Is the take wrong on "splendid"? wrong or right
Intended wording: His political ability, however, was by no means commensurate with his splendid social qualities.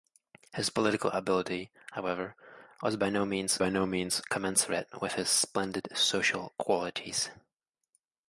right